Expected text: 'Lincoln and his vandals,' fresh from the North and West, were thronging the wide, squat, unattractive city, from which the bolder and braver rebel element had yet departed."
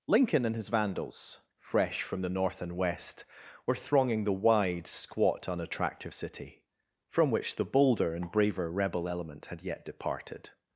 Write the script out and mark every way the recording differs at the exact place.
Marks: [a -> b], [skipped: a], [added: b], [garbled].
'Lincoln and his vandals,' fresh from the North and West, were thronging the wide, squat, unattractive city, from which the bolder and braver rebel element had yet departed."